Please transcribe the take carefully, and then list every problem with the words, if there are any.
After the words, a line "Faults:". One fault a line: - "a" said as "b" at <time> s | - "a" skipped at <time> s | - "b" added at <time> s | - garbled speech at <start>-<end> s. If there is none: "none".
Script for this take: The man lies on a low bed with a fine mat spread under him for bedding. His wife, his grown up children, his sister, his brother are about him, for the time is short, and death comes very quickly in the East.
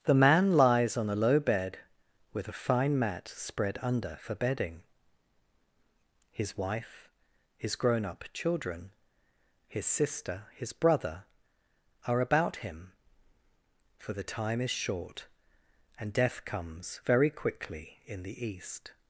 The man lies on a low bed with a fine mat spread under for bedding. His wife, his grown up children, his sister, his brother are about him, for the time is short, and death comes very quickly in the East.
Faults:
- "him" skipped at 4.2 s